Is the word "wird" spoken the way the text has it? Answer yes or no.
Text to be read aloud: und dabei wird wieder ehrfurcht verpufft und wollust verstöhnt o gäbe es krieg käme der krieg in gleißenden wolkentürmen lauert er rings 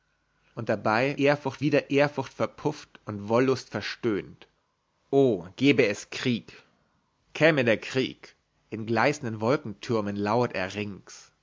no